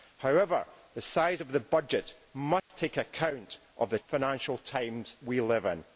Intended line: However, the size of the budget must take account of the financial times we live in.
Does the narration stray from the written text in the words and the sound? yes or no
yes